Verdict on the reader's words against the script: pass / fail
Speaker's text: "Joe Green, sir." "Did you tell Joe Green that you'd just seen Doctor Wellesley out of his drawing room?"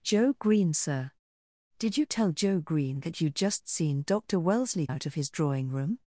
pass